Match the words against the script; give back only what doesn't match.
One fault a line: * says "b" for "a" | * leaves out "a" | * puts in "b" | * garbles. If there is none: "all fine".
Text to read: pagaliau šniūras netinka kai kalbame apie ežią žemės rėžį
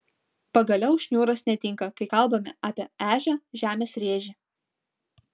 all fine